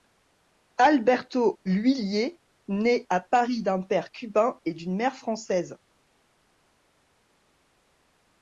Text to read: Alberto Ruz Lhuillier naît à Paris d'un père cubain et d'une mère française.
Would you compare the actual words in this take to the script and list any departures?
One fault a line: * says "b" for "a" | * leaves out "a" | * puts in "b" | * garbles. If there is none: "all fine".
* leaves out "Ruz"